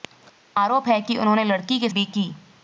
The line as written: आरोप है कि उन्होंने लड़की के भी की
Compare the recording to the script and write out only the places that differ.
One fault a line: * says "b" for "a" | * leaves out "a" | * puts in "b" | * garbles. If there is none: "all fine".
all fine